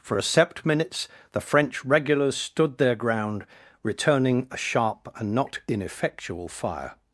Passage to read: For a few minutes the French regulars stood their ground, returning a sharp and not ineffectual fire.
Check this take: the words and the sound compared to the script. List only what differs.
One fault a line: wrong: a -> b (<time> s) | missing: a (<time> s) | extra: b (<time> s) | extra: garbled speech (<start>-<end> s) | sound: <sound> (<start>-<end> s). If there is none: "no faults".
wrong: few -> sept (0.2 s)